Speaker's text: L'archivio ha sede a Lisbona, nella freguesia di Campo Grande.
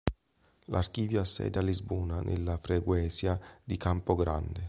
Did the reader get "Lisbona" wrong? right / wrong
right